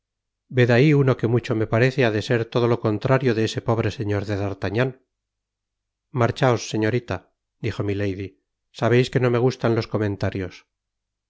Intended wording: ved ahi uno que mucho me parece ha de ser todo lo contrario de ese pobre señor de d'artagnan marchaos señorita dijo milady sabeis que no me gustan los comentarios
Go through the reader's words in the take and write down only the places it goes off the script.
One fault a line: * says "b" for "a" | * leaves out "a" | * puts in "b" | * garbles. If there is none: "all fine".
all fine